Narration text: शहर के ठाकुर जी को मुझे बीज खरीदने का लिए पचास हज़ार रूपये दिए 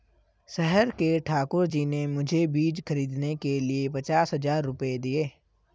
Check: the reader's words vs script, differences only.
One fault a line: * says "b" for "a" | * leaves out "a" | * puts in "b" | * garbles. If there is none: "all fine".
* says "ने" for "को"
* says "के" for "का"